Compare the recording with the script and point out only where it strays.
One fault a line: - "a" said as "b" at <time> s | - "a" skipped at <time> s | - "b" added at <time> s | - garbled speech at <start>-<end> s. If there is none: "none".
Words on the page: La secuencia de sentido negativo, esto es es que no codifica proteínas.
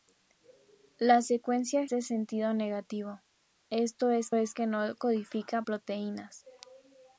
none